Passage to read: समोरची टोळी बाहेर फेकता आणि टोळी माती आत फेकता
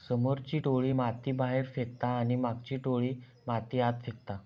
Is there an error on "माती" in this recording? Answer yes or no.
no